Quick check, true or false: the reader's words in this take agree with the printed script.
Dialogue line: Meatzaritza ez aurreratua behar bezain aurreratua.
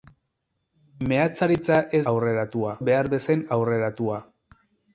true